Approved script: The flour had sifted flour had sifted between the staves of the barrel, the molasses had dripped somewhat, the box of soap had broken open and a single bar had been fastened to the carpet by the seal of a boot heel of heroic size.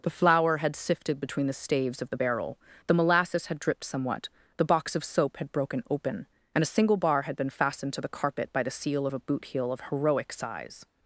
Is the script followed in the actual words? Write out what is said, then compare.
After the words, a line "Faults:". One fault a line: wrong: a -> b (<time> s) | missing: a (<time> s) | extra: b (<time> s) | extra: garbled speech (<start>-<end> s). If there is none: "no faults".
The flour had sifted between the staves of the barrel, the molasses had dripped somewhat, the box of soap had broken open and a single bar had been fastened to the carpet by the seal of a boot heel of heroic size.
Faults:
missing: flour had sifted (1.2 s)